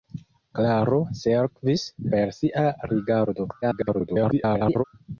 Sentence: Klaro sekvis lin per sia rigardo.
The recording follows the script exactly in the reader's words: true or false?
false